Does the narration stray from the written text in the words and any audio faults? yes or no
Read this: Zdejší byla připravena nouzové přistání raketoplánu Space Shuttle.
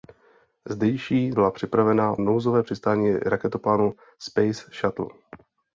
no